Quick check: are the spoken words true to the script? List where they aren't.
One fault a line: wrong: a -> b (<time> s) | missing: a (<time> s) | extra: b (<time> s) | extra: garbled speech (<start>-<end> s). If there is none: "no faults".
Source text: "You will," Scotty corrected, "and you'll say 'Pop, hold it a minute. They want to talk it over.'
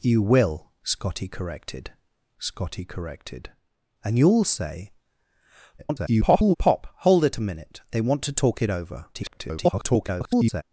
extra: Scotty corrected (2.4 s)
extra: garbled speech (5.8-6.5 s)
extra: garbled speech (9.1-10.6 s)